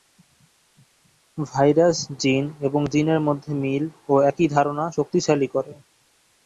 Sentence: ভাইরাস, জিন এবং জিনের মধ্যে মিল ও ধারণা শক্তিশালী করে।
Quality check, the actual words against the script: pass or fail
fail